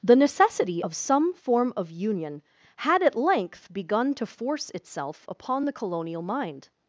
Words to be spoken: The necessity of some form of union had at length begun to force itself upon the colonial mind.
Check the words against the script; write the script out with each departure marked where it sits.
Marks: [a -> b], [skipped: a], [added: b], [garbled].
The necessity of some form of union had at length begun to force itself upon the colonial mind.